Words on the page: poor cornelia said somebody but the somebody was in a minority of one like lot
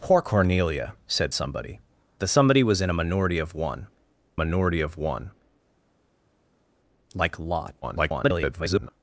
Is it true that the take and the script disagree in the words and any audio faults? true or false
true